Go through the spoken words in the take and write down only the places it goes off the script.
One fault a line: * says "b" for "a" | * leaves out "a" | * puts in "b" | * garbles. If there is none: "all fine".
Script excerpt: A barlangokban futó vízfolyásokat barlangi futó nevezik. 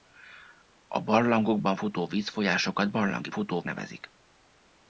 all fine